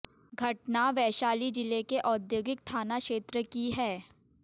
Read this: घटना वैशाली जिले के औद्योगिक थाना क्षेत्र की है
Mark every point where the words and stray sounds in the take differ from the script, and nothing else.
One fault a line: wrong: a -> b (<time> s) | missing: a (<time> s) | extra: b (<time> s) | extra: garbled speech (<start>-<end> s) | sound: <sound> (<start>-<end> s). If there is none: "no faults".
no faults